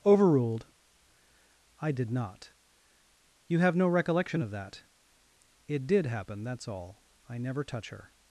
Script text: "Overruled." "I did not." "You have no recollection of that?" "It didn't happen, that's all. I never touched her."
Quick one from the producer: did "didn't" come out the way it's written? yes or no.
no